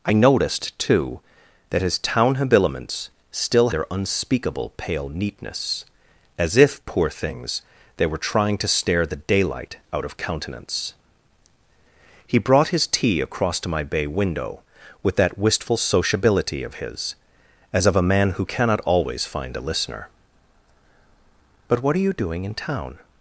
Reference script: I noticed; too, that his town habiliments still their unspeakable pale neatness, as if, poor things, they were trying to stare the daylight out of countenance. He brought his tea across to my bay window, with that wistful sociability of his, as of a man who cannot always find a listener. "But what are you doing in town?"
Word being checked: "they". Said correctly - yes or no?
yes